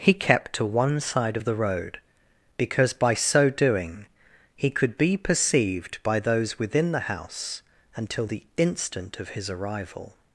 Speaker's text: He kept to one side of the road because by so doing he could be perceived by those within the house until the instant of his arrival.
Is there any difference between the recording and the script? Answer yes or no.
no